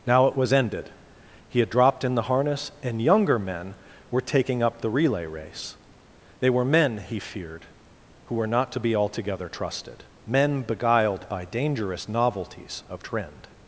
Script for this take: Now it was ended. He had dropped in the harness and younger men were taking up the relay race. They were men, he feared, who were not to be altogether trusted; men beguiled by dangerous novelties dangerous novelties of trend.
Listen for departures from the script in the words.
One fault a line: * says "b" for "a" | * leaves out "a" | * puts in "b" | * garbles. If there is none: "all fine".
* leaves out "dangerous novelties"